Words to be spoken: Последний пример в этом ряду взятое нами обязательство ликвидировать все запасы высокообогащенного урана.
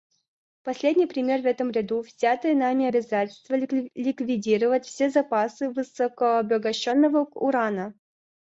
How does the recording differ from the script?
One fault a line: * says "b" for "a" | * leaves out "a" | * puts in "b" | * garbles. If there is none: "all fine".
all fine